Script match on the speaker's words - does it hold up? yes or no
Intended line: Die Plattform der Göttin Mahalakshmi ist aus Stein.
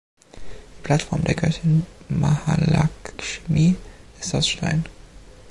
yes